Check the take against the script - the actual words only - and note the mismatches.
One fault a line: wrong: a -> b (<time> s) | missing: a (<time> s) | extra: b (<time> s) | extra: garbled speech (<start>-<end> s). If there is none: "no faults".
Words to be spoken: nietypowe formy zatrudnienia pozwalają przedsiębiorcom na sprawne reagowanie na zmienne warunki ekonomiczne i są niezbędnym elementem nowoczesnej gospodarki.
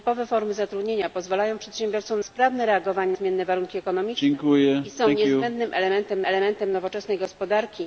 missing: na (2.2 s)
missing: na (3.1 s)
extra: elementem (6.2 s)